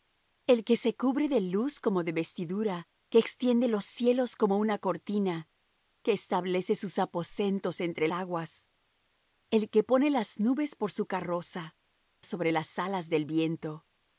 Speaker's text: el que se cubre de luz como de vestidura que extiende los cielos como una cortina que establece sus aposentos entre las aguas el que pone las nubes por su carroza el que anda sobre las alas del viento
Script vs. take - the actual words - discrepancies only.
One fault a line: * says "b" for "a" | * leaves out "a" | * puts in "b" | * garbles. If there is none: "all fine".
* leaves out "las"
* leaves out "el que anda"